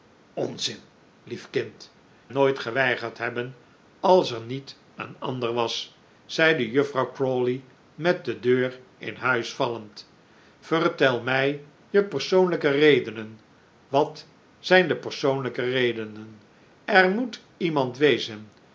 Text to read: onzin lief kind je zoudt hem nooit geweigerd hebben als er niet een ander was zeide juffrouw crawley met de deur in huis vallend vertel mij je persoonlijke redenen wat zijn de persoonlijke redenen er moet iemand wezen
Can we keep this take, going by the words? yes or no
no